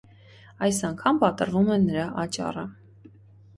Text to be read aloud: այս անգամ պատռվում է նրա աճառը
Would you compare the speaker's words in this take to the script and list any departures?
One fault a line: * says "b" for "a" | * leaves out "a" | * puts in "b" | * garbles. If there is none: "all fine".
all fine